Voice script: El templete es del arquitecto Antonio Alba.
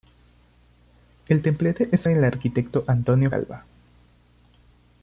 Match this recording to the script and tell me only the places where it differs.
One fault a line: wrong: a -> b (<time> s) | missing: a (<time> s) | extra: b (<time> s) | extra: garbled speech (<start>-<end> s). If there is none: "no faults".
no faults